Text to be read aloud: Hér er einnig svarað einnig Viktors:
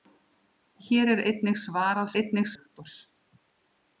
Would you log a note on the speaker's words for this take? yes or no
no